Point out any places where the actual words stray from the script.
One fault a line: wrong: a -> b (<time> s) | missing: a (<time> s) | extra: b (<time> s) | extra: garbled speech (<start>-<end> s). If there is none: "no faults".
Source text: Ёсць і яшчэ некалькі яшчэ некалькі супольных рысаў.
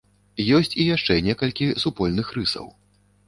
missing: яшчэ некалькі (1.7 s)